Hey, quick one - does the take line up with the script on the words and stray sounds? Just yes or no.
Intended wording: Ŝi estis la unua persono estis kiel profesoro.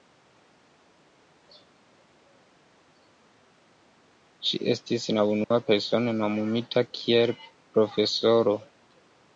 no